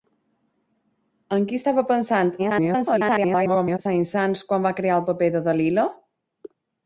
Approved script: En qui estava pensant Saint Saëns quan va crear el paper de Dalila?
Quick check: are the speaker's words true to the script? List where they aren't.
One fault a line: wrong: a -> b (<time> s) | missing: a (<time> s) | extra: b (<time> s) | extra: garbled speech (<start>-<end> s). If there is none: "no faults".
extra: garbled speech (2.4-3.8 s)